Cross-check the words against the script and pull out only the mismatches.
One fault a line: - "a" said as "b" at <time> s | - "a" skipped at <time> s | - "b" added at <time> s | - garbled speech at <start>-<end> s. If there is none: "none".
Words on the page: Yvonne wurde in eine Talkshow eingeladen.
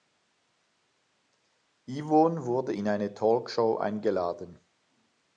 none